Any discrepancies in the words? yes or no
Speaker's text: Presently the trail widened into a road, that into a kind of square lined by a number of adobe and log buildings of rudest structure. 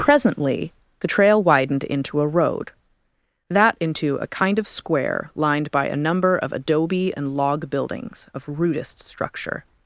no